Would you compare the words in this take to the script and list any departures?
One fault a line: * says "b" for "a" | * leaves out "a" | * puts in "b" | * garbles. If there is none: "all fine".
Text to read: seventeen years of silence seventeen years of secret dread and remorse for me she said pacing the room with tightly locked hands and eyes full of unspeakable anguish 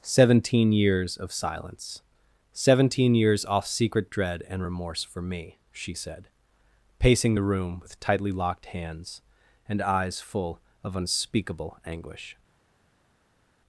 * says "off" for "of"